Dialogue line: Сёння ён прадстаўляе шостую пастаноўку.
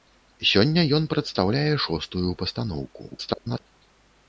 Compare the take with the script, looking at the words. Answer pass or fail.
fail